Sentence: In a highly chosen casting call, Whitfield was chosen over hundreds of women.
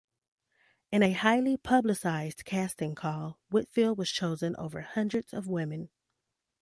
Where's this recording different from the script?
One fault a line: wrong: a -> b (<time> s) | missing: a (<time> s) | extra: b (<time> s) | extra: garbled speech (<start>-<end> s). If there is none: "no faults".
wrong: chosen -> publicized (1.6 s)